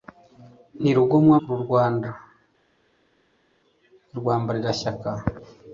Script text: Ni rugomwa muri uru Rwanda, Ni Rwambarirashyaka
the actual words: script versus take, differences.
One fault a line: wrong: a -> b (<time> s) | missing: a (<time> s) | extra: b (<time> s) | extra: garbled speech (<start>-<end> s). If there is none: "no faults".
missing: muri (1.4 s)